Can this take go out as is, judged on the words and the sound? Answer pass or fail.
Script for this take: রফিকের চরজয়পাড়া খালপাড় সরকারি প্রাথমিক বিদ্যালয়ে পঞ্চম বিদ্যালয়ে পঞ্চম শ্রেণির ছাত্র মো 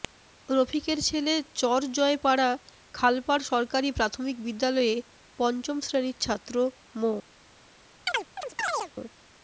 fail